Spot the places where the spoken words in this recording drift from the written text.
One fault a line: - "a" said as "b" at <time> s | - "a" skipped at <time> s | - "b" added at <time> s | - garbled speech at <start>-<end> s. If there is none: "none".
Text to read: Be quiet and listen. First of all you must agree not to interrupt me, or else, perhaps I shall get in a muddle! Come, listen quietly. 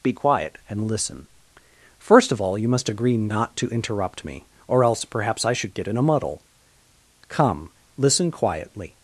- "shall" said as "should" at 5.5 s